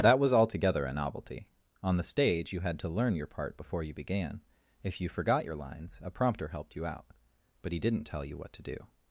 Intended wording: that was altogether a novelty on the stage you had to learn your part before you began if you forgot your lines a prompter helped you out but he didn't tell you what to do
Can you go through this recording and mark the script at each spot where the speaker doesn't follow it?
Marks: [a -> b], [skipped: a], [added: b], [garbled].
that was altogether a novelty on the stage you had to learn your part before you began if you forgot your lines a prompter helped you out but he didn't tell you what to do